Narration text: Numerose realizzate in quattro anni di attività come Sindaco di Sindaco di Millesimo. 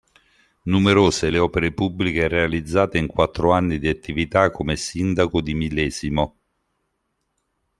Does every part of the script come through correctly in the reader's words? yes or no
no